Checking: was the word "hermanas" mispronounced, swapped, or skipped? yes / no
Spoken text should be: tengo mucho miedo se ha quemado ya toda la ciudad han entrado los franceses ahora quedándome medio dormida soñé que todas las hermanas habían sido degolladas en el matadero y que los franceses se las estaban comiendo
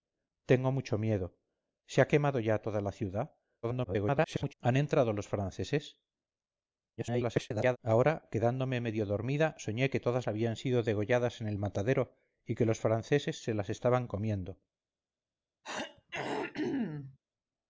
yes